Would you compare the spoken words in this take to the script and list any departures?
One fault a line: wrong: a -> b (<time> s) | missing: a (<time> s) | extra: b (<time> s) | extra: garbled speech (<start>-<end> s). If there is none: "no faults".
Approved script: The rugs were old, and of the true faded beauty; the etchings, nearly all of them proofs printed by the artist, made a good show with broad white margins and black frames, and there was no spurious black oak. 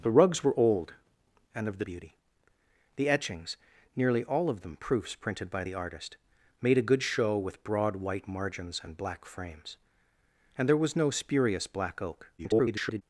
missing: true faded (1.9 s)
extra: garbled speech (12.4-13.0 s)